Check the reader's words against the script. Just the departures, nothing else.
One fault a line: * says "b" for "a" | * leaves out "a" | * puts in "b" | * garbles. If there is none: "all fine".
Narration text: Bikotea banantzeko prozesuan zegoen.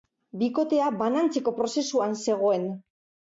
all fine